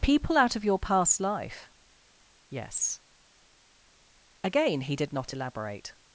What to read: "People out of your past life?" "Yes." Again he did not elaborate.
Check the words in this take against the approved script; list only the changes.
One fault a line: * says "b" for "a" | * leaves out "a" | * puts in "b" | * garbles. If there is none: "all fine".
all fine